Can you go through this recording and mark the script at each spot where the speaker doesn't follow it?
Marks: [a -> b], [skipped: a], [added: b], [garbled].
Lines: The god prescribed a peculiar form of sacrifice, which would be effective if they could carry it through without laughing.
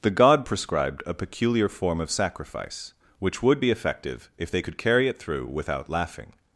The god prescribed a peculiar form of sacrifice, which would be effective if they could carry it through without laughing.